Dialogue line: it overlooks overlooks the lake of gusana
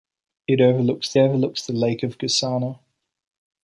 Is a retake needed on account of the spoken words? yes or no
no